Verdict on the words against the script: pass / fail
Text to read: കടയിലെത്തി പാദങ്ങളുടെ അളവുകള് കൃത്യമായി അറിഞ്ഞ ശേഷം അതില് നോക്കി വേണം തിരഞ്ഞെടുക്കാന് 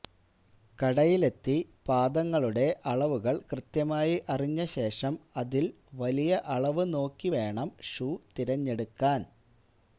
fail